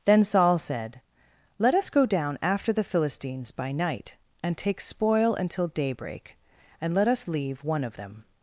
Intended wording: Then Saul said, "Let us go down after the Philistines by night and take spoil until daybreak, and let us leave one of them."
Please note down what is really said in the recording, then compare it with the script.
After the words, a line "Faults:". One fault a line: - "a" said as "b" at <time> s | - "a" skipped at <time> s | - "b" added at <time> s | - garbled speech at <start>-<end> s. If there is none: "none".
Then Saul said, "Let us go down after the Philistines by night and take spoil until daybreak, and let us leave one of them."
Faults:
none